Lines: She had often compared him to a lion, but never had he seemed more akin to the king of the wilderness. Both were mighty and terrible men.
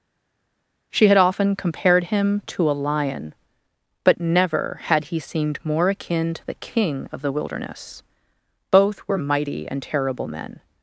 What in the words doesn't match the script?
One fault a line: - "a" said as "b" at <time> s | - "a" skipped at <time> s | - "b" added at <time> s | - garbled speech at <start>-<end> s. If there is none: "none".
none